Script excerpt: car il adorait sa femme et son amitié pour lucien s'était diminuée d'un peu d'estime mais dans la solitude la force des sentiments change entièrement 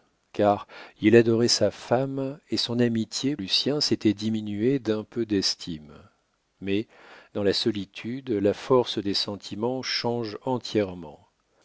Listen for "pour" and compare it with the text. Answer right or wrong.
wrong